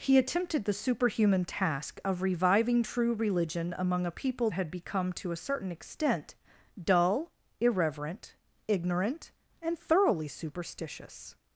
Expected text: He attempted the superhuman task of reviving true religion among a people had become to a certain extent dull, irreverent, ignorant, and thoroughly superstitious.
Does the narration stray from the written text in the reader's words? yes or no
no